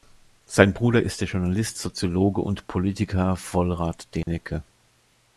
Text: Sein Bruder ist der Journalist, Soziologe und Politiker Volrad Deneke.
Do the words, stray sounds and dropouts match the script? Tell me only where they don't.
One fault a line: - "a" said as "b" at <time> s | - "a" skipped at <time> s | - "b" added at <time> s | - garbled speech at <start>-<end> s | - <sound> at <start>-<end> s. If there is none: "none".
- dropout at 4.2-4.3 s